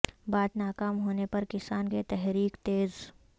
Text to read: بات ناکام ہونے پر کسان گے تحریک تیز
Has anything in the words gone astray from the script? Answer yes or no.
no